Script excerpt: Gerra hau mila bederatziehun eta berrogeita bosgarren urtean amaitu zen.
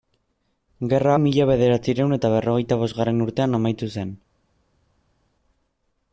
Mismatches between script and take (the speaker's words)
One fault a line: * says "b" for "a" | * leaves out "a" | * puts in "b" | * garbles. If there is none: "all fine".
* leaves out "hau"